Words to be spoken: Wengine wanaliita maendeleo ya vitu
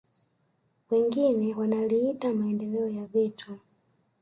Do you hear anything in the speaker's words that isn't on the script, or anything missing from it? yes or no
no